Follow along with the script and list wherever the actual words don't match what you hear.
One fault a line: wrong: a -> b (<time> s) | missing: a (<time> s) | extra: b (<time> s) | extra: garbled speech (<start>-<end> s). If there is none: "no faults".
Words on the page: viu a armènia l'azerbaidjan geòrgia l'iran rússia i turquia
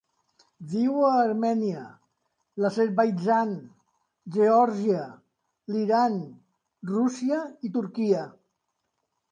no faults